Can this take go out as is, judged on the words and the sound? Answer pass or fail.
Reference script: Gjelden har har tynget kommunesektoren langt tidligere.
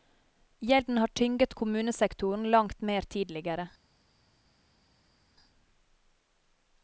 fail